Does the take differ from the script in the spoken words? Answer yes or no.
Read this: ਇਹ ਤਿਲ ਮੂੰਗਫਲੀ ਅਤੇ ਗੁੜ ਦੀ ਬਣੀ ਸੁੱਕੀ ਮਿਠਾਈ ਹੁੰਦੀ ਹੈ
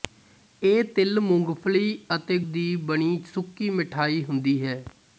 yes